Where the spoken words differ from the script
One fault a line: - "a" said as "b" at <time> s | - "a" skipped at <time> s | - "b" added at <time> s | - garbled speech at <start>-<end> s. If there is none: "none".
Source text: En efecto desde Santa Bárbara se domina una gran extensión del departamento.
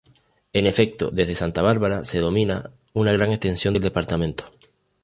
none